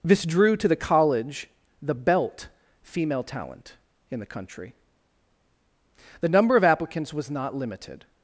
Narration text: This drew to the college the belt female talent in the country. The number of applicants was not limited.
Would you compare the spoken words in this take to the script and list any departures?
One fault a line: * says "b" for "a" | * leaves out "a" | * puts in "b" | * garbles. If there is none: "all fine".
all fine